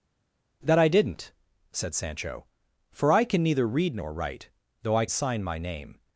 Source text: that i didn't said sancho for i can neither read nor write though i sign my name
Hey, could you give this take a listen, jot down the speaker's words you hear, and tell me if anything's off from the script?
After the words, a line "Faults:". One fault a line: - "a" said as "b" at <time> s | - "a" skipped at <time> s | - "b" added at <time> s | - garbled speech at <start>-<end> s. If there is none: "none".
that i didn't said sancho for i can neither read nor write though i sign my name
Faults:
none